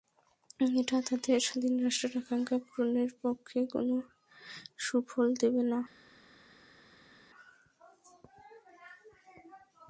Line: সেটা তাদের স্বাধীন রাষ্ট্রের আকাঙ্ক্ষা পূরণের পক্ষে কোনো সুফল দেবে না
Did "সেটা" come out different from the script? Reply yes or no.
yes